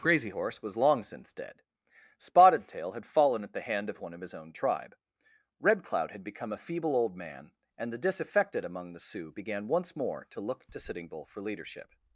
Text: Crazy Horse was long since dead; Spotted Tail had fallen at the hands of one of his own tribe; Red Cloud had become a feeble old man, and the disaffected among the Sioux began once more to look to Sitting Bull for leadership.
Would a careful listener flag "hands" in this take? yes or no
yes